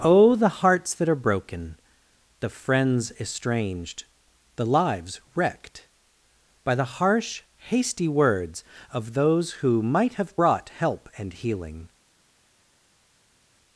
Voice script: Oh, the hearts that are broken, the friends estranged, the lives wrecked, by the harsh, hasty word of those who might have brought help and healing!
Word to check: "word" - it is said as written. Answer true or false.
false